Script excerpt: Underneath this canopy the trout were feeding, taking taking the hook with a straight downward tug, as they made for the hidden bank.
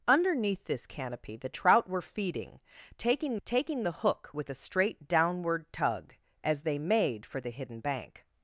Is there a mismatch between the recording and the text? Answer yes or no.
no